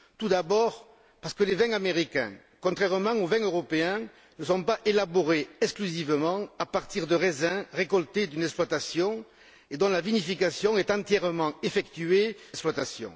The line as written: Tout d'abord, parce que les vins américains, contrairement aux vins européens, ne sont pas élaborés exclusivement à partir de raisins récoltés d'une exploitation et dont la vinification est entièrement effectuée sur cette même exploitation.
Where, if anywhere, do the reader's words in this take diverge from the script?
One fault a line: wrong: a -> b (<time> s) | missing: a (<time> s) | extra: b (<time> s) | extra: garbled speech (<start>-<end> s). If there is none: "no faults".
missing: sur cette même (12.4 s)